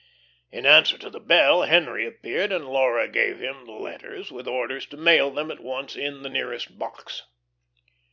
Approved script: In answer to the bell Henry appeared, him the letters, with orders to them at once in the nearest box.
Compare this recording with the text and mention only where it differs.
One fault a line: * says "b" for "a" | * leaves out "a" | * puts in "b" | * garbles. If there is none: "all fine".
* puts in "and Laura gave"
* puts in "mail"